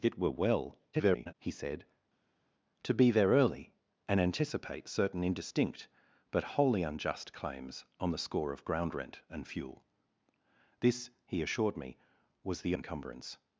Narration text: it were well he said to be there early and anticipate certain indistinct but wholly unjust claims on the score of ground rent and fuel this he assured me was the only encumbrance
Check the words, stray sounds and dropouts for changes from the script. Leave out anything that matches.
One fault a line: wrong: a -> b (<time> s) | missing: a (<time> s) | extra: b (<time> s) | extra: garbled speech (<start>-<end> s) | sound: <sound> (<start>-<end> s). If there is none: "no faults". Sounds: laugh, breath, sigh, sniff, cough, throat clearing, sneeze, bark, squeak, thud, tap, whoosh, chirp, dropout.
extra: garbled speech (0.9-1.3 s)
missing: only (12.8 s)